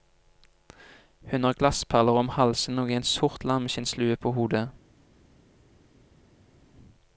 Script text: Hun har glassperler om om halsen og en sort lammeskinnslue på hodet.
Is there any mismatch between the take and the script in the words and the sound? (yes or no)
yes